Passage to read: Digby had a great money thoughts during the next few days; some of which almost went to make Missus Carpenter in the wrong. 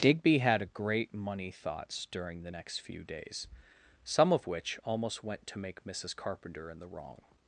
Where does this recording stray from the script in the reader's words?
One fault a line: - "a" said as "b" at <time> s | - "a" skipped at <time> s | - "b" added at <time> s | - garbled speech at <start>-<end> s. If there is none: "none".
none